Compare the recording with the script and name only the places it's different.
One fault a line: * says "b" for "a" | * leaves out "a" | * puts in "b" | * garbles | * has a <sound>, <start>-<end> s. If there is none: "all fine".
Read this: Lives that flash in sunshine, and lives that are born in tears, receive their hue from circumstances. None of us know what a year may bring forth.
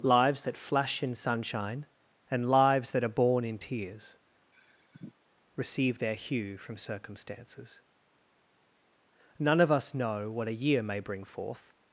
* has a sigh, 4.5-5.1 s